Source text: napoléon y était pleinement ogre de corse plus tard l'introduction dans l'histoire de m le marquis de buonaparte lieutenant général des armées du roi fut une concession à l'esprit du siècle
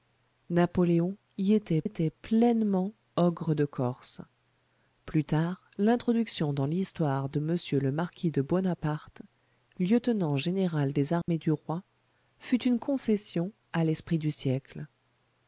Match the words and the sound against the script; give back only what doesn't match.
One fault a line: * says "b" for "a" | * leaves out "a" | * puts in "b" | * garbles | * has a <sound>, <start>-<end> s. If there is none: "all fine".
* puts in "était"
* has a dropout, 11.2-11.3 s